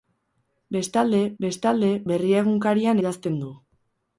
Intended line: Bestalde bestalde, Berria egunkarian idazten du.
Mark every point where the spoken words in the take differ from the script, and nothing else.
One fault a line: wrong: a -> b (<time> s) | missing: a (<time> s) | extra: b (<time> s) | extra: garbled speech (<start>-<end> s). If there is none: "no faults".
no faults